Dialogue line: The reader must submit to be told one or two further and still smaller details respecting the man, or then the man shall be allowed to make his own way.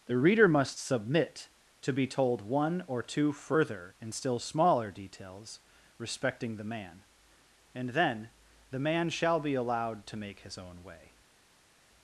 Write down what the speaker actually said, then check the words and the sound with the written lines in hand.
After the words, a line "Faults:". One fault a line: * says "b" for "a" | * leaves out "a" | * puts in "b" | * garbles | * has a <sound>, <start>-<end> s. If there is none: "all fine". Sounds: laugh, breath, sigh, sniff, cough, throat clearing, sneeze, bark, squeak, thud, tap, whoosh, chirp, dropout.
The reader must submit to be told one or two further and still smaller details respecting the man, and then the man shall be allowed to make his own way.
Faults:
* says "and" for "or"